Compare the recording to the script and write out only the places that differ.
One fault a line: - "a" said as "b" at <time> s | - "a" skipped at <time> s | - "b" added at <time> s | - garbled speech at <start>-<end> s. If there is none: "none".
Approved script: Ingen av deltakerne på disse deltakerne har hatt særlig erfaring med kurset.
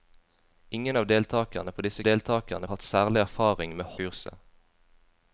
none